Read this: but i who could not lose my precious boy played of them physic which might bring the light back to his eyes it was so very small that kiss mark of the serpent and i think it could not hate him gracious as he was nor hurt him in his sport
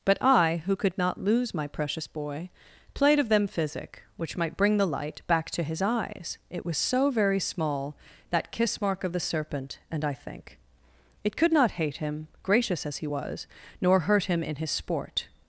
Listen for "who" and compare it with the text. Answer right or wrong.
right